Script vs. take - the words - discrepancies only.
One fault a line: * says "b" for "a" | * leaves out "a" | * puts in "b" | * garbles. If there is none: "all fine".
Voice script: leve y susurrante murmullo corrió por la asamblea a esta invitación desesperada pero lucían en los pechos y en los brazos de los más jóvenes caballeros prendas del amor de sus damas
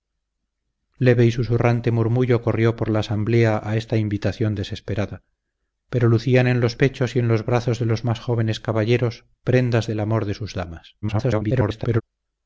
* garbles